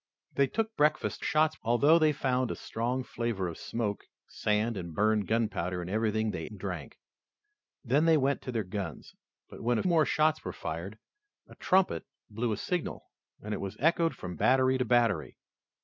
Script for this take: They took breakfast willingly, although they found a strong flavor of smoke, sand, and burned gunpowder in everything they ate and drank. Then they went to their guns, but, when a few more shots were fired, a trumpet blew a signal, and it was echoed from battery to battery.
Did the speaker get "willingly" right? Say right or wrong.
wrong